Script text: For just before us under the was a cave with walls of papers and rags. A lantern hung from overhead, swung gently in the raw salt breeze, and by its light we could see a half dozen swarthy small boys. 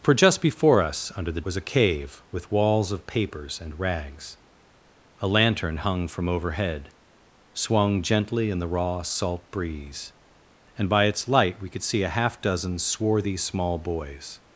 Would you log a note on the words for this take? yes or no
no